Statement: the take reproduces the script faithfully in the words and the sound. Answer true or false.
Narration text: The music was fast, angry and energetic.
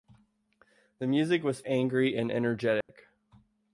false